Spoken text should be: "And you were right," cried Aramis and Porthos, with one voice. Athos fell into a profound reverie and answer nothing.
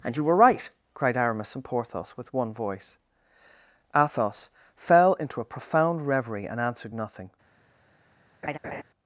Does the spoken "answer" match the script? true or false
false